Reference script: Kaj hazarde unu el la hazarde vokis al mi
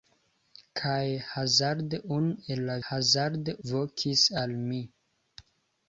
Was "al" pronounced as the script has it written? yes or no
yes